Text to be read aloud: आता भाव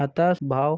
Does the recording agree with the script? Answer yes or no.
yes